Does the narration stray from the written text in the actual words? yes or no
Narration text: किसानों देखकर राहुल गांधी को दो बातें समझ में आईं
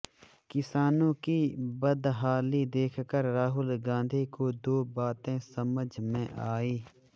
yes